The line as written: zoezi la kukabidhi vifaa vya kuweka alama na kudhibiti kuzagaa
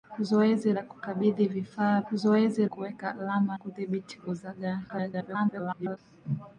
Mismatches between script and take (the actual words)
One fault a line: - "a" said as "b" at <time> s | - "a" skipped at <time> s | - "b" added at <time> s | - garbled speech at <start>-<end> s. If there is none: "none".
- "vya" said as "zoezi" at 2.1 s
- "na" skipped at 3.6 s
- garbled speech at 4.9-6.0 s